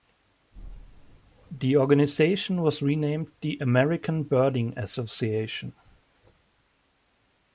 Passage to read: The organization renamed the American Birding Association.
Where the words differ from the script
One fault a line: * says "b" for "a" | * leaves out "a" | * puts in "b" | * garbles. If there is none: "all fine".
* puts in "was"